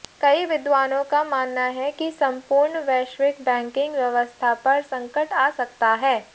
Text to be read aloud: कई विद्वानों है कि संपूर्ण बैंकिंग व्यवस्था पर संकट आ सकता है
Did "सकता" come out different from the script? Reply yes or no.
no